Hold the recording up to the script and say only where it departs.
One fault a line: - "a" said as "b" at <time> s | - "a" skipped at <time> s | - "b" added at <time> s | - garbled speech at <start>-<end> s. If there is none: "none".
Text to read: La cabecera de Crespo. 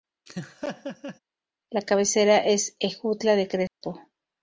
- "es Ejutla" added at 2.4 s